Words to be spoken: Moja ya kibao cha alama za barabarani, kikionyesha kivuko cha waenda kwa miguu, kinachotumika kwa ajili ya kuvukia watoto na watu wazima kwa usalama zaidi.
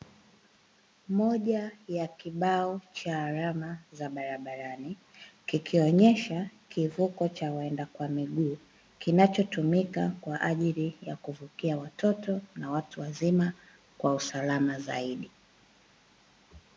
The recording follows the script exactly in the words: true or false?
true